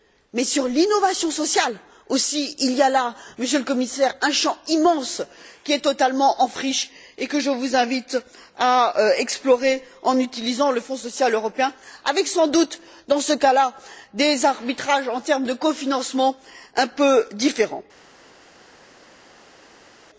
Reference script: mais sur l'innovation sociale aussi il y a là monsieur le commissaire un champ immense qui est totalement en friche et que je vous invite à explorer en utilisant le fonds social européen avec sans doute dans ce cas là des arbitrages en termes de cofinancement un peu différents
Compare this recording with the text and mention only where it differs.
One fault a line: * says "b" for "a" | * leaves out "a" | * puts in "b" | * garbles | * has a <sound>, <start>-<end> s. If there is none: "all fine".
all fine